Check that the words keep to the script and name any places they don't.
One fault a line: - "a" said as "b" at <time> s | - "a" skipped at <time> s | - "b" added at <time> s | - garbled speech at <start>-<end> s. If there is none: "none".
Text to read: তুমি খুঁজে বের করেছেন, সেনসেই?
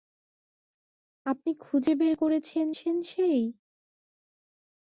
- "তুমি" said as "আপনি" at 1.2 s